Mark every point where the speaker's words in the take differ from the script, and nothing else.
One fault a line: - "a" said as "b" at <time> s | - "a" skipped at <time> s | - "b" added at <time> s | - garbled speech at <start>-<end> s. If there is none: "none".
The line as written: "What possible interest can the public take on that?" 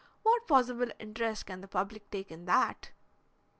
- "on" said as "in" at 2.3 s